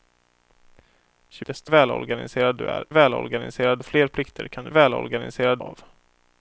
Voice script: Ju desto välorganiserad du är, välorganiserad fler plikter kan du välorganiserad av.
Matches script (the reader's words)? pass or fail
pass